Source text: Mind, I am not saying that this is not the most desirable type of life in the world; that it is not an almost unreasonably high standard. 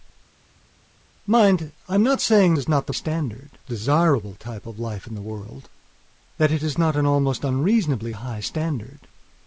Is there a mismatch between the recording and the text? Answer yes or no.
yes